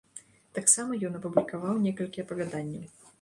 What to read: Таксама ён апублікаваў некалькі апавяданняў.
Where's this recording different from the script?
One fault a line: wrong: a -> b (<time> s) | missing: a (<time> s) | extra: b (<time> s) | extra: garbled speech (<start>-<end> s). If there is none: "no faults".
no faults